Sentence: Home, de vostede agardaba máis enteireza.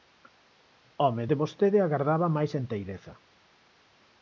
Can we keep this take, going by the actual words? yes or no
yes